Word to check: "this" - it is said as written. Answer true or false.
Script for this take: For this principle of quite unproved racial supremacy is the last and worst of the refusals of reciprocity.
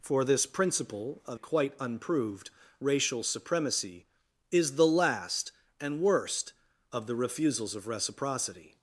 true